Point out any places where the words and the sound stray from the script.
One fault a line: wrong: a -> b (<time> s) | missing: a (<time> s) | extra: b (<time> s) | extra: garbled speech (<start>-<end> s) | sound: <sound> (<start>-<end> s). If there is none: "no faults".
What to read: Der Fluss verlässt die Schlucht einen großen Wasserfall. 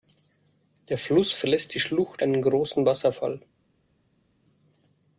no faults